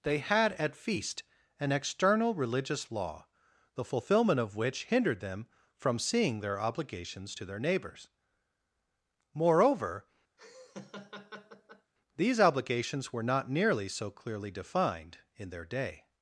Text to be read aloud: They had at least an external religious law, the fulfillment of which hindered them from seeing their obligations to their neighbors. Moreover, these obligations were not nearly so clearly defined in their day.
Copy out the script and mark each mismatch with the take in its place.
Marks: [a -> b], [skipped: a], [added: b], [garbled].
They had at [least -> feast] an external religious law, the fulfillment of which hindered them from seeing their obligations to their neighbors. Moreover, these obligations were not nearly so clearly defined in their day.